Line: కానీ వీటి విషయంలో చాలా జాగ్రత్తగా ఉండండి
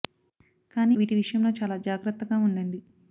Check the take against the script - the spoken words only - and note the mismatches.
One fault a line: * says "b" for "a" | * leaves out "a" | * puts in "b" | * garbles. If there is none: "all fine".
all fine